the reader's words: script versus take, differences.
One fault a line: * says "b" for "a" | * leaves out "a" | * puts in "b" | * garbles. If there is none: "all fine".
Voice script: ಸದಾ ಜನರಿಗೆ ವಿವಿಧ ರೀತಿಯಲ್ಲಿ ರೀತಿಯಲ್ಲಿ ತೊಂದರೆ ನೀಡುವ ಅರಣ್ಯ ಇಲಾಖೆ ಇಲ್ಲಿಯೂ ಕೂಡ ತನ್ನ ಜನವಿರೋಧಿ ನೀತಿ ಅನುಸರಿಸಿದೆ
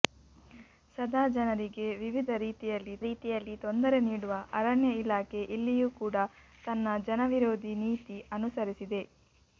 all fine